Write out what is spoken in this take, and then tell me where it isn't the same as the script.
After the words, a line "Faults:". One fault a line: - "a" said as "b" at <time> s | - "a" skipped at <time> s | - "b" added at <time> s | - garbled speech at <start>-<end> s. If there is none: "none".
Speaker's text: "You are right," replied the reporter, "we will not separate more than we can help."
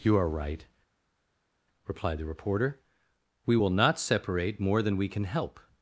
"You are right," replied the reporter, "we will not separate more than we can help."
Faults:
none